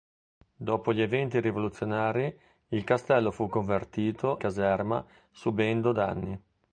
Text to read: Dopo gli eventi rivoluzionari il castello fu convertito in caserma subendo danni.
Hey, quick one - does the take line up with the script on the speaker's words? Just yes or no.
no